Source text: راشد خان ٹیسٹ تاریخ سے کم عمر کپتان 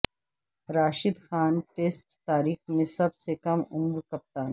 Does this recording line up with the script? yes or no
no